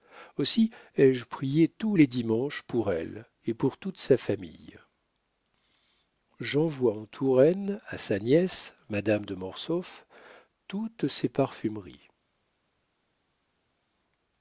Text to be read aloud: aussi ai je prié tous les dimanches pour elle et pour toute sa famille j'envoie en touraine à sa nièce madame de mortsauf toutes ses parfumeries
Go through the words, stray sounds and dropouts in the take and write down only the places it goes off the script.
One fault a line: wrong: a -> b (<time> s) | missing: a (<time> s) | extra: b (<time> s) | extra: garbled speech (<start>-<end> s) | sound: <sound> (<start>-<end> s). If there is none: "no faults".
no faults